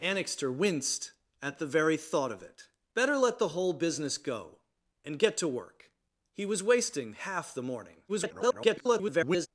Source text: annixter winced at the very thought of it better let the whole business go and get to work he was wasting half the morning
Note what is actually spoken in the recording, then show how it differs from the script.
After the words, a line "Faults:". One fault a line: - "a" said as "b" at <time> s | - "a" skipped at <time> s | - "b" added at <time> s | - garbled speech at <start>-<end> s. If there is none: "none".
annixter winced at the very thought of it better let the whole business go and get to work he was wasting half the morning [garbled]
Faults:
- garbled speech at 8.1-9.5 s